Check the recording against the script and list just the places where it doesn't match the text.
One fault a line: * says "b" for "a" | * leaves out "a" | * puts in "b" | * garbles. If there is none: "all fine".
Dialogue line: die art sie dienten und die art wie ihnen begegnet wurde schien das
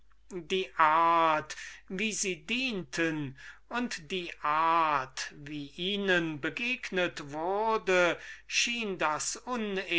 * puts in "wie"